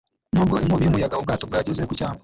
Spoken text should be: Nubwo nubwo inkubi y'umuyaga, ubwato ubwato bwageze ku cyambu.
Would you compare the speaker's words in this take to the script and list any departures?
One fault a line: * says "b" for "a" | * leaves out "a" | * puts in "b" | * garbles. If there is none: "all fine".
* leaves out "nubwo"
* leaves out "ubwato"